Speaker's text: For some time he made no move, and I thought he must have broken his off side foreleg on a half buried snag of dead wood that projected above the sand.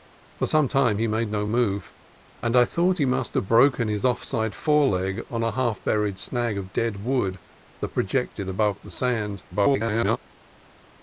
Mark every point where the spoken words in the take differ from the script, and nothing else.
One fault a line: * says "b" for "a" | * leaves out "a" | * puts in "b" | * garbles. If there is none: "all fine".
* garbles